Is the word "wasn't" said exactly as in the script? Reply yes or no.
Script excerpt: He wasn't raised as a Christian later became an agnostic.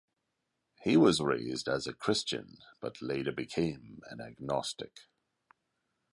no